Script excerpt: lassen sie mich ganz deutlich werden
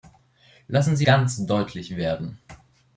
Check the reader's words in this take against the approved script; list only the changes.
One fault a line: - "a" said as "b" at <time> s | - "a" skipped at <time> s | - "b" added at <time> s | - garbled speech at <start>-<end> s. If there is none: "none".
- "mich" skipped at 1.1 s